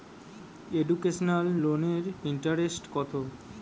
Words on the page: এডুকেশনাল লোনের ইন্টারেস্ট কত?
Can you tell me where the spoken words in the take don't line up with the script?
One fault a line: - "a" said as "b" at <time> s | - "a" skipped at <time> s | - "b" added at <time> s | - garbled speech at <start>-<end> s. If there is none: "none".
none